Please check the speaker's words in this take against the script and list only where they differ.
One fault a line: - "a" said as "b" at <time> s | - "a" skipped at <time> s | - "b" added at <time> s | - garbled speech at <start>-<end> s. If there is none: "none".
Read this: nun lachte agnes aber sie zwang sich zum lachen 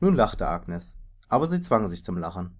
none